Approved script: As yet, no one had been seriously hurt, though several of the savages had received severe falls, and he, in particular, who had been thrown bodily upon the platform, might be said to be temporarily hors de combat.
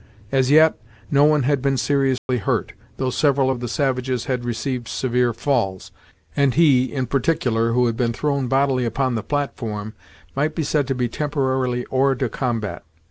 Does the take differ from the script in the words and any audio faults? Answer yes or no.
yes